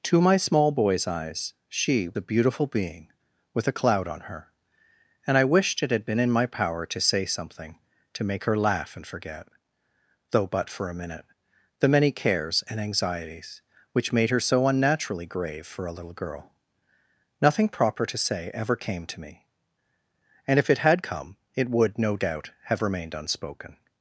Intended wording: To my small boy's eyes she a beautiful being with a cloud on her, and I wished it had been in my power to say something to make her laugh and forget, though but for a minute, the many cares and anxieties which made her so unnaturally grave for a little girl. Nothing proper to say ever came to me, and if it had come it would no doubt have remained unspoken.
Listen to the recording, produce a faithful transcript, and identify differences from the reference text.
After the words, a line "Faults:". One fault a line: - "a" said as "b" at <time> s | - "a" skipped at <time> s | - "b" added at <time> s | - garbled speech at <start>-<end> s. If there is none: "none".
To my small boy's eyes she a beautiful being with a cloud on her, and I wished it had been in my power to say something to make her laugh and forget, though but for a minute, the many cares and anxieties which made her so unnaturally grave for a little girl. Nothing proper to say ever came to me, and if it had come it would no doubt have remained unspoken.
Faults:
none